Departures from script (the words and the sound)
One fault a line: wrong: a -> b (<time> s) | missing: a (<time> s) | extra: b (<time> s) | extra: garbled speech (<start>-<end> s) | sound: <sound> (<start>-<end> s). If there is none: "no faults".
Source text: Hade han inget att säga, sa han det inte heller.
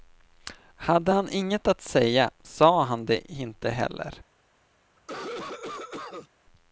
sound: cough (5.0-6.3 s)